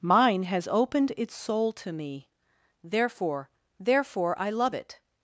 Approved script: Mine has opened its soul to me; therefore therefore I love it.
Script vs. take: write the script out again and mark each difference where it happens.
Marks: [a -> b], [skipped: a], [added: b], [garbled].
Mine has opened its soul to me; therefore therefore I love it.